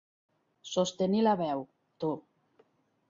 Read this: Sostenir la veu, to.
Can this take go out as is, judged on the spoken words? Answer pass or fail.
pass